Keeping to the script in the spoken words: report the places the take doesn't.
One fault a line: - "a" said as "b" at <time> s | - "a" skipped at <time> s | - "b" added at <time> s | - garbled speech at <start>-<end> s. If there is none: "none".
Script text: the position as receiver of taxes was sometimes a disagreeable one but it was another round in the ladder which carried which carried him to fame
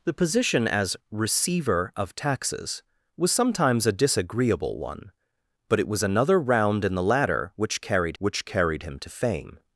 none